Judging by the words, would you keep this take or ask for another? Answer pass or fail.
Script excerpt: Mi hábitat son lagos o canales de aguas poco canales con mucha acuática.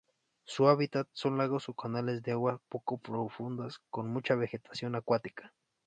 fail